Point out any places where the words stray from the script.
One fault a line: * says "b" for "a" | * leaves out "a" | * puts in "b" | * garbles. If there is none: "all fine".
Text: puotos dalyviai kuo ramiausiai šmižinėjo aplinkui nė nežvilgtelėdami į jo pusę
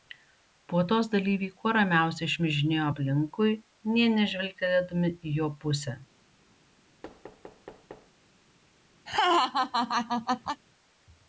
all fine